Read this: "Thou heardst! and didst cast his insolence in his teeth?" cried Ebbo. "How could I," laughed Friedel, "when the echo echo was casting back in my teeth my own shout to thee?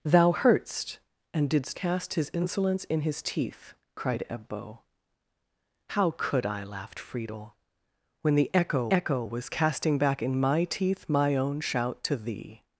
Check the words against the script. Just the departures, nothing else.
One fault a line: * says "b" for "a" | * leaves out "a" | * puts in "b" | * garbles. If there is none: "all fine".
all fine